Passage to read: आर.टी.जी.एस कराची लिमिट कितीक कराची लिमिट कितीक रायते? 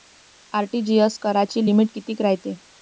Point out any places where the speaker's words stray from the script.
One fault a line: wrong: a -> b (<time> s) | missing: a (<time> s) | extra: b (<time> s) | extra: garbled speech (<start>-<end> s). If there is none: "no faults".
missing: कराची लिमिट कितीक (2.2 s)